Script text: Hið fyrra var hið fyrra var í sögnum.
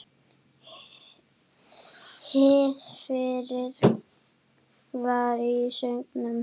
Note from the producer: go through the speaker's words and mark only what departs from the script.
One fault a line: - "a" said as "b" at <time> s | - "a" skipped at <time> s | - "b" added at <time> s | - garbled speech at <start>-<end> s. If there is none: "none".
- "hið fyrra var" skipped at 5.4 s